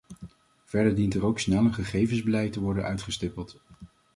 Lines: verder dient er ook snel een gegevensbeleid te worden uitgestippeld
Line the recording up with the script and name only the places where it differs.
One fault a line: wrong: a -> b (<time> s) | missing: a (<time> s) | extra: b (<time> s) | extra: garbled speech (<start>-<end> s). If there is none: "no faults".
no faults